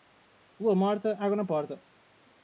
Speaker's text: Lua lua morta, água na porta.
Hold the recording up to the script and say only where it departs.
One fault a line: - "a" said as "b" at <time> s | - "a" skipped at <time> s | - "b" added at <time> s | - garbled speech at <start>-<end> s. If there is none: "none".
- "lua" skipped at 0.8 s